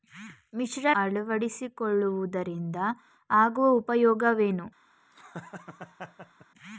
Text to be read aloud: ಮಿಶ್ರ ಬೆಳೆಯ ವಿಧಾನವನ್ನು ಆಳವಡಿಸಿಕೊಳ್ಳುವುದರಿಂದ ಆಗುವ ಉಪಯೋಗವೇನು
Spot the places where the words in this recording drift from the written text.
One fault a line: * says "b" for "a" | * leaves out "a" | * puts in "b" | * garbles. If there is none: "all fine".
* leaves out "ಬೆಳೆಯ ವಿಧಾನವನ್ನು"